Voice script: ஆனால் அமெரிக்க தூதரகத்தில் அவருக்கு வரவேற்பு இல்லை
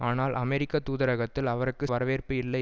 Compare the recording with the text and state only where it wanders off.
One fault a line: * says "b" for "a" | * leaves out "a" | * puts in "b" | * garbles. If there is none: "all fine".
all fine